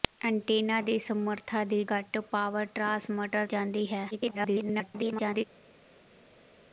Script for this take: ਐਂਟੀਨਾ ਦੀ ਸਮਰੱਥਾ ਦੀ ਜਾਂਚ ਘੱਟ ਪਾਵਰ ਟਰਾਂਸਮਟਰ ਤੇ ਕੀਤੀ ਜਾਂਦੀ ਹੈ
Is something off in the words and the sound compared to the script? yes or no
yes